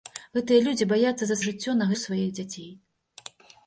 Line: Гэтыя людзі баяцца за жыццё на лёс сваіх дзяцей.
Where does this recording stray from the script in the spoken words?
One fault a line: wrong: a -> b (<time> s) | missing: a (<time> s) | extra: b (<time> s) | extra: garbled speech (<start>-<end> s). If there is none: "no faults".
no faults